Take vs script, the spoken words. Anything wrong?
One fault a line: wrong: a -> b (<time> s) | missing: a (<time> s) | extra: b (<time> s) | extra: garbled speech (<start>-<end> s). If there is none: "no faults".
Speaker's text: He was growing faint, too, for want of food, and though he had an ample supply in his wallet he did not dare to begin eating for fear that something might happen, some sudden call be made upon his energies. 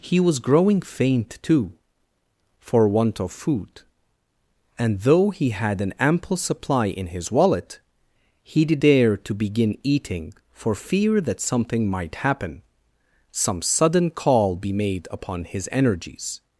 missing: not (8.8 s)